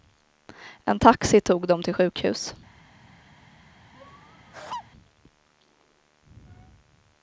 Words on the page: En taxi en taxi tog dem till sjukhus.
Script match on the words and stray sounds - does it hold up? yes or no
no